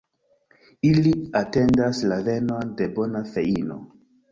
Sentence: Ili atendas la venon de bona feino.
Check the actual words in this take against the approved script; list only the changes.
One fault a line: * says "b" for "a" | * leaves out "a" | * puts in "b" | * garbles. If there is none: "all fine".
all fine